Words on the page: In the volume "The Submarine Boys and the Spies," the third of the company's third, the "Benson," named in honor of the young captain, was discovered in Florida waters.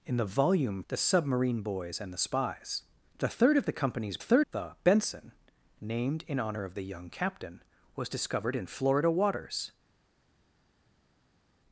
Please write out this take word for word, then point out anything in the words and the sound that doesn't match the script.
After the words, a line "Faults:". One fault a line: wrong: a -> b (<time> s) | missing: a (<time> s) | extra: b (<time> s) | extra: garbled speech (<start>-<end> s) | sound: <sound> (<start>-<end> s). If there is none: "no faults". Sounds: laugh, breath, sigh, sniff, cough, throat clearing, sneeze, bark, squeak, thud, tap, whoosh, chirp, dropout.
In the volume "The Submarine Boys and the Spies," the third of the company's third, the "Benson," named in honor of the young captain, was discovered in Florida waters.
Faults:
no faults